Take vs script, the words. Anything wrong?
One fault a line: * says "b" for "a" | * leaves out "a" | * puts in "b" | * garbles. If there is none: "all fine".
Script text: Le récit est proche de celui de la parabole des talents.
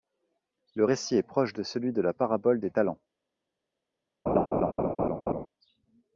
all fine